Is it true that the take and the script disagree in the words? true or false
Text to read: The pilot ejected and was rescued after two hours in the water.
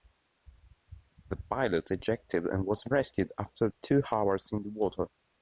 false